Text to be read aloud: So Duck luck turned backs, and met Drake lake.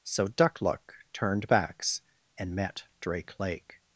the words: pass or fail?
pass